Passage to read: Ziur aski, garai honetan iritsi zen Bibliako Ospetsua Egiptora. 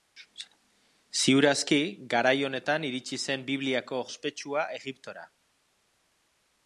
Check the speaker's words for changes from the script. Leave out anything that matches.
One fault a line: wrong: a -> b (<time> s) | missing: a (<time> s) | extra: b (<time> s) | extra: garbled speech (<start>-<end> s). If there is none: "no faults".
no faults